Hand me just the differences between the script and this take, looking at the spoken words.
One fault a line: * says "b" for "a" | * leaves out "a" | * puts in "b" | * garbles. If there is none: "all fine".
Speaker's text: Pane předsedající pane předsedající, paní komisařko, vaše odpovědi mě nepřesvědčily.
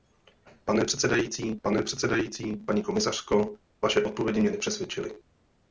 all fine